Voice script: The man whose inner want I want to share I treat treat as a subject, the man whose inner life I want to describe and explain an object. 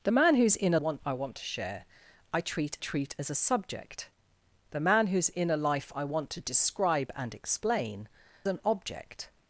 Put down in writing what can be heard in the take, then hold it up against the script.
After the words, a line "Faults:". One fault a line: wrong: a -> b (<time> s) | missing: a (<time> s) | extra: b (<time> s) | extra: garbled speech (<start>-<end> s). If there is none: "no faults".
The man whose inner want I want to share I treat treat as a subject, the man whose inner life I want to describe and explain an object.
Faults:
no faults